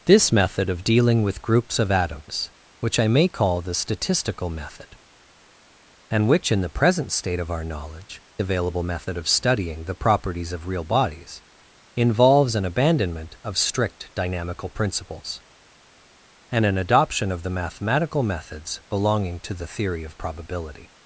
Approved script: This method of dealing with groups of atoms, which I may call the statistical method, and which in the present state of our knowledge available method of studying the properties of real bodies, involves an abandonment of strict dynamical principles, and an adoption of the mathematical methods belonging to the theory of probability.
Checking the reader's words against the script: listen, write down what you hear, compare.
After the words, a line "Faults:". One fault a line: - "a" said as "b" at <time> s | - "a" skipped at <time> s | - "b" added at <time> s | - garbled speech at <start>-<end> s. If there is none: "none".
This method of dealing with groups of atoms, which I may call the statistical method, and which in the present state of our knowledge available method of studying the properties of real bodies, involves an abandonment of strict dynamical principles, and an adoption of the mathematical methods belonging to the theory of probability.
Faults:
none